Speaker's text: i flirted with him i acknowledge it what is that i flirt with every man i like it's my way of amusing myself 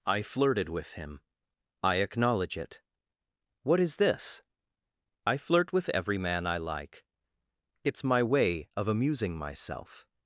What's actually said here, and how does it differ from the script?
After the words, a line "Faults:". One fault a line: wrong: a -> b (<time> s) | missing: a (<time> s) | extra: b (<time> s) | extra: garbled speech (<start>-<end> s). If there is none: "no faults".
i flirted with him i acknowledge it what is this i flirt with every man i like it's my way of amusing myself
Faults:
wrong: that -> this (4.0 s)